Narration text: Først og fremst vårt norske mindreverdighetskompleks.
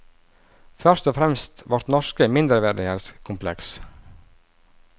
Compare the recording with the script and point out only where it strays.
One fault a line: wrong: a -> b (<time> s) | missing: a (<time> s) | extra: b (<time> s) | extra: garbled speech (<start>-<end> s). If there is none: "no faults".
no faults